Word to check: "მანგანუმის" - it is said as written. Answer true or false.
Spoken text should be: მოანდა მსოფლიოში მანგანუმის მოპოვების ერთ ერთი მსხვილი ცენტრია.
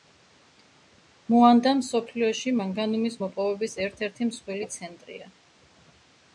true